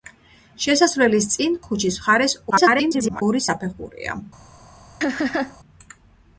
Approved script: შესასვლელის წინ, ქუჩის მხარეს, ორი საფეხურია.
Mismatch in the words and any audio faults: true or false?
true